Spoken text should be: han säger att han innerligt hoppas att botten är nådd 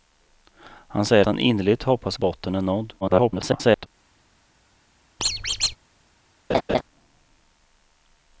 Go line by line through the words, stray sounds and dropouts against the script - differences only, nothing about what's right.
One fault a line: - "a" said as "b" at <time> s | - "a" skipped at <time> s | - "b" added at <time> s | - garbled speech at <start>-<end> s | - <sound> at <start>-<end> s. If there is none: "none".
- "att" skipped at 1.2 s
- "att" skipped at 2.2 s
- garbled speech at 3.0-3.9 s
- squeak at 5.2-5.8 s
- laugh at 6.5-6.8 s